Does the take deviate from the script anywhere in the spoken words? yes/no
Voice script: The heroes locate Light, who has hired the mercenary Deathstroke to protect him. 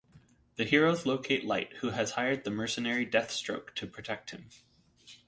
no